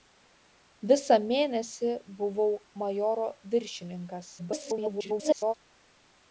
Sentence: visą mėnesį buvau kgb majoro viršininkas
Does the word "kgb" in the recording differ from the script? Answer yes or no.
yes